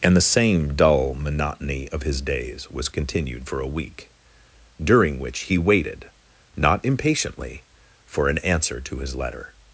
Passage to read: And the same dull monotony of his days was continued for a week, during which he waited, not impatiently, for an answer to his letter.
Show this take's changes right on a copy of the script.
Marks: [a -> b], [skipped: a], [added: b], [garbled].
And the same dull monotony of his days was continued for a week, during which he waited, not impatiently, for an answer to his letter.